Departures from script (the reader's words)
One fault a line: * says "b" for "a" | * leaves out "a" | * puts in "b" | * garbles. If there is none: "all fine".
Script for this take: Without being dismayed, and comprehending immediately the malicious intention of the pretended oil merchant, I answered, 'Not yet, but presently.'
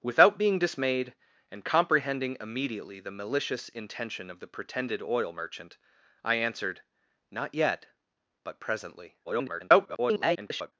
* garbles